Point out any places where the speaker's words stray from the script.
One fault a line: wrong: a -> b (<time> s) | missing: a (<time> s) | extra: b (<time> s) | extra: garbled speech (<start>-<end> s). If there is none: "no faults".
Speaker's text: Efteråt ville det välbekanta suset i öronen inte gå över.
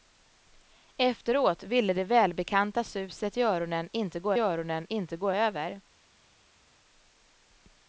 extra: öronen inte gå (4.4 s)